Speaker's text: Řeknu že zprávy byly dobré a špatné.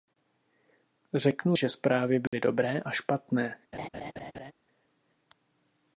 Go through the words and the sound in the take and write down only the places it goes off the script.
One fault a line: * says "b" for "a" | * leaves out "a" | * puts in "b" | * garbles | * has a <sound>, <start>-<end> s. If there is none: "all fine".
* has a dropout, 2.3-2.3 s
* has a laugh, 3.7-4.5 s